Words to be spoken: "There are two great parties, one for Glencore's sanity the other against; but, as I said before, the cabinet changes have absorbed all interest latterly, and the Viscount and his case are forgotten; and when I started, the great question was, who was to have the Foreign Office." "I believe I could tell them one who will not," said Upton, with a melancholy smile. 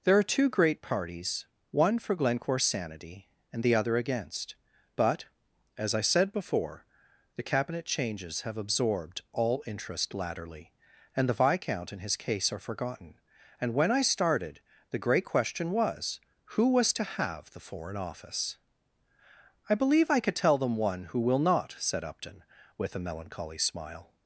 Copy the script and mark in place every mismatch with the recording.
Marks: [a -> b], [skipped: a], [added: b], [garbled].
"There are two great parties, one for Glencore's sanity [added: and] the other against; but, as I said before, the cabinet changes have absorbed all interest latterly, and the Viscount and his case are forgotten; and when I started, the great question was, who was to have the Foreign Office." "I believe I could tell them one who will not," said Upton, with a melancholy smile.